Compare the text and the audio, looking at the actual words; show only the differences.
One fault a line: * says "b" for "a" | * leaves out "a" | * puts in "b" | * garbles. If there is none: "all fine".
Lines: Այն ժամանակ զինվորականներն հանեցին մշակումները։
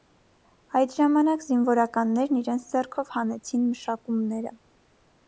* says "Այդ" for "Այն"
* puts in "իրենց ձեռքով"